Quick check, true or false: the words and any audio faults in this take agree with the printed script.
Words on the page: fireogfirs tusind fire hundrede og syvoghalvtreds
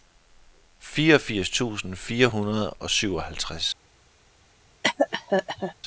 false